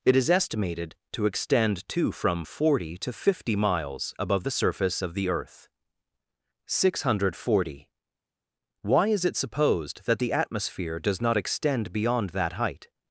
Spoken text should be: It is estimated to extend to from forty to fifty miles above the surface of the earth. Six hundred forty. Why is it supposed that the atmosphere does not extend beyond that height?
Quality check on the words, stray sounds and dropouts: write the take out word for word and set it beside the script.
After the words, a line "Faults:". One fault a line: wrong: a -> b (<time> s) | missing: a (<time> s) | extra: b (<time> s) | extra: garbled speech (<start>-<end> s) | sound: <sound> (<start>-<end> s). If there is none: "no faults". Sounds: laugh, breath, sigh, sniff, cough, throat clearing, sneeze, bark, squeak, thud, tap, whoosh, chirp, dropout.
It is estimated to extend to from forty to fifty miles above the surface of the earth. Six hundred forty. Why is it supposed that the atmosphere does not extend beyond that height?
Faults:
no faults